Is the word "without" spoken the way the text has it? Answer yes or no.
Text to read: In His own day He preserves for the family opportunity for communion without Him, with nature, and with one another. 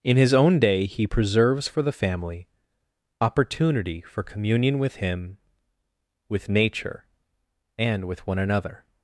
no